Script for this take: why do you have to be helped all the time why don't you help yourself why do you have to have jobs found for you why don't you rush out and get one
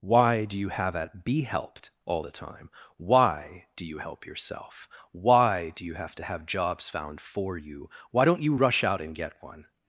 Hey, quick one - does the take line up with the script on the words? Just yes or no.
no